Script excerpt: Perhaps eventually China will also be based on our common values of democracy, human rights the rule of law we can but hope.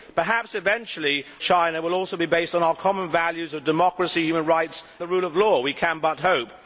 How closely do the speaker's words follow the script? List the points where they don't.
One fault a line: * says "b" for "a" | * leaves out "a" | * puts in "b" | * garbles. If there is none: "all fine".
all fine